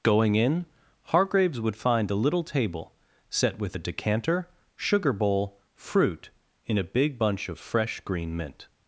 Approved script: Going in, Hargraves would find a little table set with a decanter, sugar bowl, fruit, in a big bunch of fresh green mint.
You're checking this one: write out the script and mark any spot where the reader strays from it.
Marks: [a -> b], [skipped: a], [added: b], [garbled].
Going in, Hargraves would find a little table set with a decanter, sugar bowl, fruit, in a big bunch of fresh green mint.